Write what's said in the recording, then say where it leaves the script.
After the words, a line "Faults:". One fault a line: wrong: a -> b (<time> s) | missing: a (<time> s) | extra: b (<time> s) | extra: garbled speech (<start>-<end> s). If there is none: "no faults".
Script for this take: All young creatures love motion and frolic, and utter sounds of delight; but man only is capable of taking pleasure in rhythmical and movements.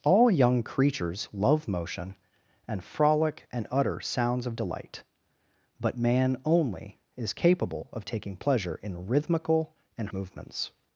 All young creatures love motion and frolic, and utter sounds of delight; but man only is capable of taking pleasure in rhythmical and movements.
Faults:
no faults